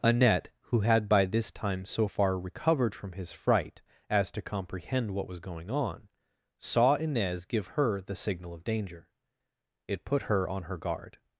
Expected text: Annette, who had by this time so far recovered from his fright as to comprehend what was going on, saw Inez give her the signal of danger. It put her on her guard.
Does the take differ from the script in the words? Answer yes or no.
no